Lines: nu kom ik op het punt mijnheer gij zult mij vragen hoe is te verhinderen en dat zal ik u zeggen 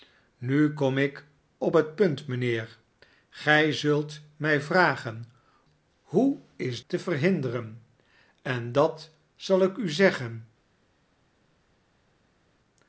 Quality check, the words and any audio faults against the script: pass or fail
pass